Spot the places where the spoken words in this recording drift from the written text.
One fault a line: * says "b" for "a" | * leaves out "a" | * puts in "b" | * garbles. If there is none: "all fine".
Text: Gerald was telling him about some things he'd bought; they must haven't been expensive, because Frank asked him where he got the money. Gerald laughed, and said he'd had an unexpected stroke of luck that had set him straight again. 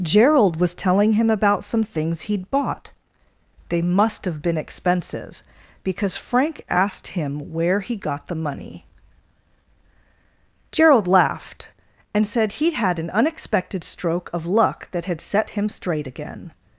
* says "have" for "haven't"